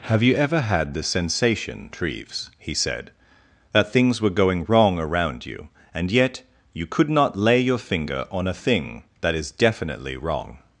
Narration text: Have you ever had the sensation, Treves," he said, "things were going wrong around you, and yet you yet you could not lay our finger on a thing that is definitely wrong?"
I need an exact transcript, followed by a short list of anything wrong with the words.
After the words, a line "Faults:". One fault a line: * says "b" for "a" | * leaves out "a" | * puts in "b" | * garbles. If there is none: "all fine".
Have you ever had the sensation, Treves," he said, "that things were going wrong around you, and yet you could not lay your finger on a thing that is definitely wrong?"
Faults:
* puts in "that"
* leaves out "yet you"
* says "your" for "our"